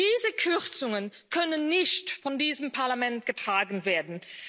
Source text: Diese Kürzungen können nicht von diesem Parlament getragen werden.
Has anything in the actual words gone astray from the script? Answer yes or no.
no